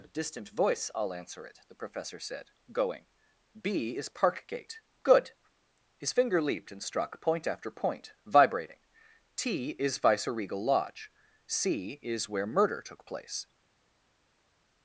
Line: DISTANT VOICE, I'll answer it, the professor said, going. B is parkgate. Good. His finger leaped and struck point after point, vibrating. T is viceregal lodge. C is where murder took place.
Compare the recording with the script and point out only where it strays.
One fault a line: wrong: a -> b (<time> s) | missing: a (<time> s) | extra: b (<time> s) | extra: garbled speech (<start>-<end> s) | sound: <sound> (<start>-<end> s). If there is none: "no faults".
no faults